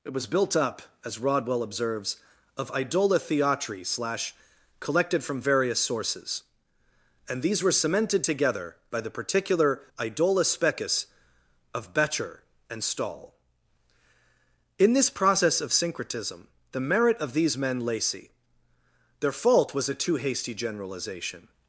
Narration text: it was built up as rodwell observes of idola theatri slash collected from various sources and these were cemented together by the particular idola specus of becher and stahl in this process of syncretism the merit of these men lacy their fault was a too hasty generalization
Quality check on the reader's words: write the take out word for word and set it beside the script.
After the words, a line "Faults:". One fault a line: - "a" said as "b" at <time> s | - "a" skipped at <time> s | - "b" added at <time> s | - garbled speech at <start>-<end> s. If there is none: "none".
it was built up as rodwell observes of idola theatri slash collected from various sources and these were cemented together by the particular idola specus of becher and stahl in this process of syncretism the merit of these men lacy their fault was a too hasty generalization
Faults:
none